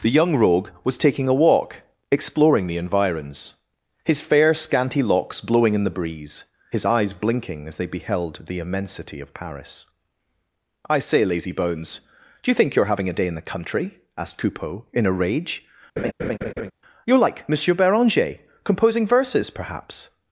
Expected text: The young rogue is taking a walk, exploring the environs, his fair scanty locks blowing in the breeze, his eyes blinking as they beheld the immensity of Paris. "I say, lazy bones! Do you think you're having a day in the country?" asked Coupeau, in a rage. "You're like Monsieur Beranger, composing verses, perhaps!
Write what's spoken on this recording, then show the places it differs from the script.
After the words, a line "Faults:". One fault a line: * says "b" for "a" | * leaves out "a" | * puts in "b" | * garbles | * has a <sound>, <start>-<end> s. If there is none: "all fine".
The young rogue was taking a walk, exploring the environs, his fair scanty locks blowing in the breeze, his eyes blinking as they beheld the immensity of Paris. "I say, lazy bones! Do you think you're having a day in the country?" asked Coupeau, in a rage. "You're like Monsieur Beranger, composing verses, perhaps!
Faults:
* says "was" for "is"
* has a laugh, 16.0-16.7 s